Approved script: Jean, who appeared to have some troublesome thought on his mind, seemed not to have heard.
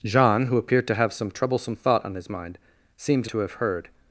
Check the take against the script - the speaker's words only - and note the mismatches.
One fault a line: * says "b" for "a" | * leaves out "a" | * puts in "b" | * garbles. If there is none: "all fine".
* leaves out "not"